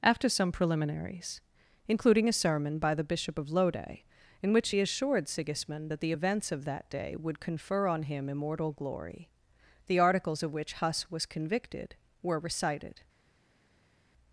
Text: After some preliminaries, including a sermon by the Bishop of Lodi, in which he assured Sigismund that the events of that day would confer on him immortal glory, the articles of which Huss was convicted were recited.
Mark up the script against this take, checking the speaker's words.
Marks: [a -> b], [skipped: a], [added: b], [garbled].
After some preliminaries, including a sermon by the Bishop of Lodi, in which he assured Sigismund that the events of that day would confer on him immortal glory, the articles of which Huss was convicted were recited.